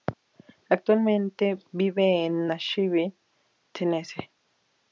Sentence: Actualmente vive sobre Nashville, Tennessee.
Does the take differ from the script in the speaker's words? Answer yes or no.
yes